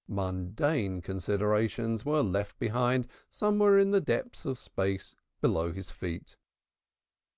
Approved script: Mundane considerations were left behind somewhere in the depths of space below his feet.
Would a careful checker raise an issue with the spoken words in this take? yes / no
no